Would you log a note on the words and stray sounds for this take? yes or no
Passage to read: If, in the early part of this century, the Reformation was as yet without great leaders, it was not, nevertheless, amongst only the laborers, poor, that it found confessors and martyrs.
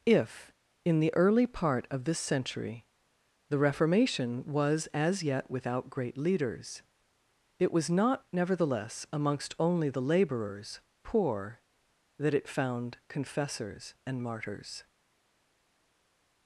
no